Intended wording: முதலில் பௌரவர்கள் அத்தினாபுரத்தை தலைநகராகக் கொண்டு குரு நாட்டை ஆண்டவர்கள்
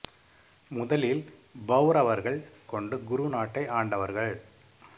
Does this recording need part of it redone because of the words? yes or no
yes